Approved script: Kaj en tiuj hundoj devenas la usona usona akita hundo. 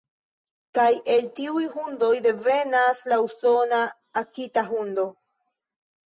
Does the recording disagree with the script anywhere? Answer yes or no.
yes